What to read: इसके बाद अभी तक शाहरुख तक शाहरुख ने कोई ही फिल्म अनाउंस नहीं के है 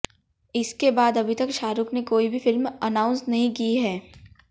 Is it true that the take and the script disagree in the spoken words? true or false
true